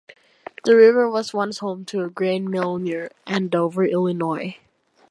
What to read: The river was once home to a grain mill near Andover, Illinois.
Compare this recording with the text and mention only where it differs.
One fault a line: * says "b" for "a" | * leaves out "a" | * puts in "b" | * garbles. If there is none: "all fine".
all fine